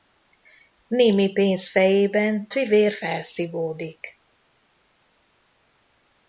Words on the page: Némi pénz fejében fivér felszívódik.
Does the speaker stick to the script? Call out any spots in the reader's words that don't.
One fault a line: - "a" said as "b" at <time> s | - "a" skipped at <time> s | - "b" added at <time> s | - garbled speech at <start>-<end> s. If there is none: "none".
none